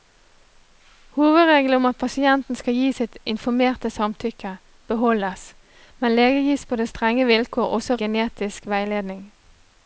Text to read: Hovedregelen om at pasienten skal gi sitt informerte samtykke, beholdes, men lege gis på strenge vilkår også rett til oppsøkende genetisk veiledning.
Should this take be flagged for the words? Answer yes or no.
yes